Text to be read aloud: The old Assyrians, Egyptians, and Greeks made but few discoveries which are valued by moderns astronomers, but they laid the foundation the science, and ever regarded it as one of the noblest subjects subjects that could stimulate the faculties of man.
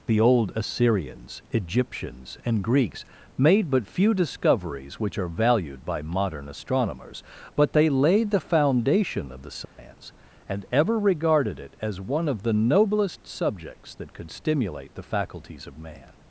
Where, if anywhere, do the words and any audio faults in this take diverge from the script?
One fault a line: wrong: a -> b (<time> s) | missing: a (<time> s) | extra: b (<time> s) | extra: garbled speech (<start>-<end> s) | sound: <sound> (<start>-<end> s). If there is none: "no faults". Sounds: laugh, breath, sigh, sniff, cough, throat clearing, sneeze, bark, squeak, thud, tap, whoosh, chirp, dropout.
wrong: moderns -> modern (6.0 s)
extra: of (9.3 s)
sound: dropout (9.6-9.8 s)
missing: subjects (13.9 s)